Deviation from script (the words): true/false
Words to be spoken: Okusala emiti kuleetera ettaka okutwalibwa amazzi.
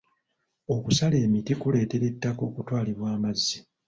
false